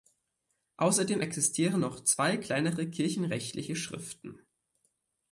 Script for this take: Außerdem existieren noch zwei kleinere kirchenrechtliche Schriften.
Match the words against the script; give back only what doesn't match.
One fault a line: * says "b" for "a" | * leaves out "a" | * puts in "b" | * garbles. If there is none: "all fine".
all fine